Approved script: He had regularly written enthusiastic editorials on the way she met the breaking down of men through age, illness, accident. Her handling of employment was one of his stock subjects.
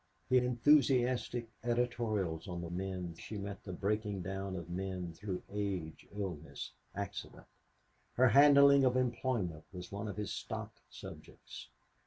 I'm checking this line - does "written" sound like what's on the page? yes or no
no